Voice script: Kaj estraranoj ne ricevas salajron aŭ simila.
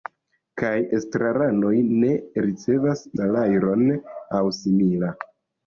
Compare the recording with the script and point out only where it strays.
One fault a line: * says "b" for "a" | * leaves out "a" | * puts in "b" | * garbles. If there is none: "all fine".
all fine